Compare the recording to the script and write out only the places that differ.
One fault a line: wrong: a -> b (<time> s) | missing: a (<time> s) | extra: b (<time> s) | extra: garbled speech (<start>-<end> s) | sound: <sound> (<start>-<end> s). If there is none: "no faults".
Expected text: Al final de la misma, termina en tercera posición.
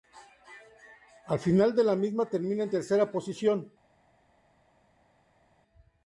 no faults